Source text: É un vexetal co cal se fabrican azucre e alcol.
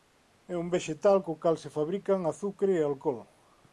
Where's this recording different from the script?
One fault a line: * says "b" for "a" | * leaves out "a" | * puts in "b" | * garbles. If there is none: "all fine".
all fine